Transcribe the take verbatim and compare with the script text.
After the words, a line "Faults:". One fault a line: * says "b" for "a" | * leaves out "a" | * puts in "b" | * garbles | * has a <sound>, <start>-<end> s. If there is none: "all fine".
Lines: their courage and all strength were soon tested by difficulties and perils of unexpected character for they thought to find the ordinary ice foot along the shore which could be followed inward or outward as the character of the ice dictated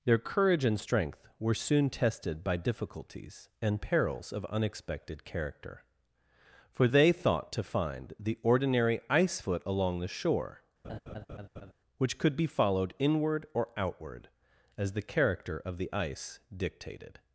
their courage and strength were soon tested by difficulties and perils of unexpected character for they thought to find the ordinary ice foot along the shore which could be followed inward or outward as the character of the ice dictated
Faults:
* leaves out "all"
* has a laugh, 10.8-11.7 s